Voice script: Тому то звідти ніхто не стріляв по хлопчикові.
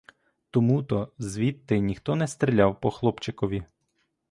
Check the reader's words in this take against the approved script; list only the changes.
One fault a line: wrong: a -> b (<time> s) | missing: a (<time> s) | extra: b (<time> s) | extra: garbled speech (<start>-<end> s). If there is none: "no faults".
no faults